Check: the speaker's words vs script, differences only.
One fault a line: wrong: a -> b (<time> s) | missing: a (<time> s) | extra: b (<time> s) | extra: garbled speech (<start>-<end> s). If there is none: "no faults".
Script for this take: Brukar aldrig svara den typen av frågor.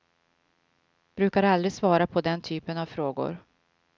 extra: på (2.1 s)